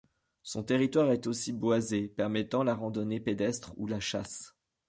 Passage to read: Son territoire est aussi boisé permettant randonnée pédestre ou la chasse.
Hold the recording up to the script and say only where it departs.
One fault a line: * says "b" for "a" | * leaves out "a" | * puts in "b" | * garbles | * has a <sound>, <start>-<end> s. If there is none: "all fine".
* puts in "la"